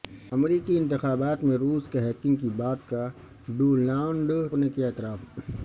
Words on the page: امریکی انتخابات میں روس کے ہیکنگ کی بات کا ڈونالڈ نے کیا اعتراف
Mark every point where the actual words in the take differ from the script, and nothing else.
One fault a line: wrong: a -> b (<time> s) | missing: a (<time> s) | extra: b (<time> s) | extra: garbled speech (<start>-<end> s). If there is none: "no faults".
no faults